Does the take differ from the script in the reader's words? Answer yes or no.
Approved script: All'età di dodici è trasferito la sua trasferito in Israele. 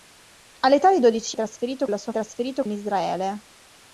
no